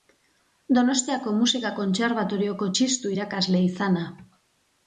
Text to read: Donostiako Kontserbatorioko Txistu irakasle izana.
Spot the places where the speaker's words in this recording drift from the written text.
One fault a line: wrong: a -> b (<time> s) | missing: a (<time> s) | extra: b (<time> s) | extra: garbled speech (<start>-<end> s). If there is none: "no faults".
extra: Musika (1.4 s)